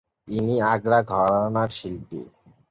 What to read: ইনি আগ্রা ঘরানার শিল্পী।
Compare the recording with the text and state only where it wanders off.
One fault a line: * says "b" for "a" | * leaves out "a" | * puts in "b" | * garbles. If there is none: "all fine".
all fine